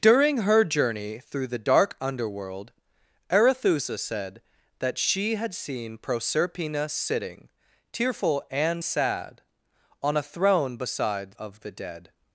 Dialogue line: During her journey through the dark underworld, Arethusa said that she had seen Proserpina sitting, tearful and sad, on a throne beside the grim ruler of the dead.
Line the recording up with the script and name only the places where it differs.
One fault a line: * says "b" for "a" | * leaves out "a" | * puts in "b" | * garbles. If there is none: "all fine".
* leaves out "the grim ruler"